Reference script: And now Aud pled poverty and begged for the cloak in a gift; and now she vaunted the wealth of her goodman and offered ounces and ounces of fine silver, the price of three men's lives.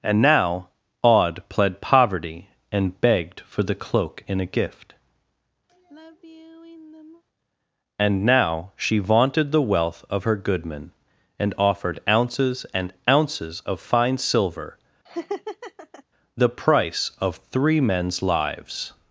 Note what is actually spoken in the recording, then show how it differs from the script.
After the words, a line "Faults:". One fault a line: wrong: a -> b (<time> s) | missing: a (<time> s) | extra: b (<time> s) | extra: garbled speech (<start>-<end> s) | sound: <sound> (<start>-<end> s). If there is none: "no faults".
And now Aud pled poverty and begged for the cloak in a gift; and now she vaunted the wealth of her goodman and offered ounces and ounces of fine silver, the price of three men's lives.
Faults:
sound: sigh (5.7-7.2 s)
sound: laugh (15.1-16.0 s)